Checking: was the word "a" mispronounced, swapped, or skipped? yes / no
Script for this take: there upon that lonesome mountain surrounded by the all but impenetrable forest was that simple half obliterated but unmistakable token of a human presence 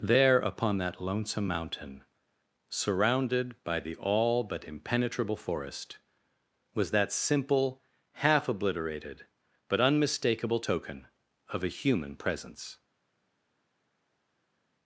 no